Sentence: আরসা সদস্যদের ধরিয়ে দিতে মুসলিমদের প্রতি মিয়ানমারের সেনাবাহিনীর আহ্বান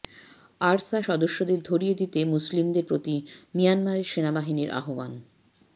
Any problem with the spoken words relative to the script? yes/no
no